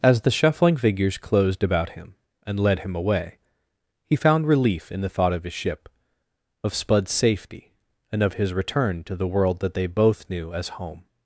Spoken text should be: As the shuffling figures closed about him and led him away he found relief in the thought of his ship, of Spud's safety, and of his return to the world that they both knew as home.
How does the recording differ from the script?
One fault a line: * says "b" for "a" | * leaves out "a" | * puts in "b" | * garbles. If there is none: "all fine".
all fine